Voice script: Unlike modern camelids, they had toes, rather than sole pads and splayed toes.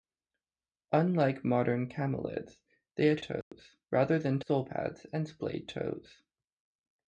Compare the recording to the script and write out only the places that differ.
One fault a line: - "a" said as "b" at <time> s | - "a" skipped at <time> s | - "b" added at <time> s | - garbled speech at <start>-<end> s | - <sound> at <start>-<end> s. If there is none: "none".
- dropout at 3.4-3.5 s